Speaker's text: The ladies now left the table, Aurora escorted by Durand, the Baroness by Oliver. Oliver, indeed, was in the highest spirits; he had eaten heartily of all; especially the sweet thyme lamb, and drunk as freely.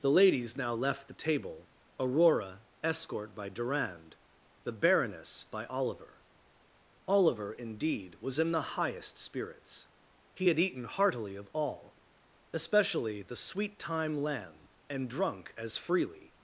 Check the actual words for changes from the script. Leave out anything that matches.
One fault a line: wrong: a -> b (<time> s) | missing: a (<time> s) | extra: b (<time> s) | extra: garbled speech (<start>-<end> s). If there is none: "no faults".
wrong: escorted -> escort (2.8 s)